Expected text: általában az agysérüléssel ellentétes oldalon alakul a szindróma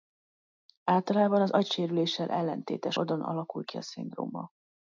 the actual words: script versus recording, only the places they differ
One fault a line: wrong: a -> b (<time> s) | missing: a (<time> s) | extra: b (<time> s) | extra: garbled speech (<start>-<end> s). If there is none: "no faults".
extra: ki (3.6 s)